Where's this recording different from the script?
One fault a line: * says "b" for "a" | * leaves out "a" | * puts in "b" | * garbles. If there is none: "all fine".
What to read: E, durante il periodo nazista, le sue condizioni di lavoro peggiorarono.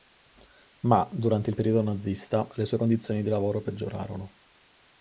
* says "Ma" for "E"